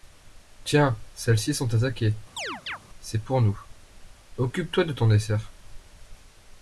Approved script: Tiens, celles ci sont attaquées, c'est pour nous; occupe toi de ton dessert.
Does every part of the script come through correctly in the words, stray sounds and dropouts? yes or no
no